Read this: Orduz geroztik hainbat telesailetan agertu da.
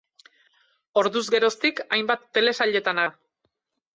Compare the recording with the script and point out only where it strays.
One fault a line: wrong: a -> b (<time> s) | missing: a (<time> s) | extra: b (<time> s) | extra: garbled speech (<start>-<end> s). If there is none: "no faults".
missing: agertu (3.1 s)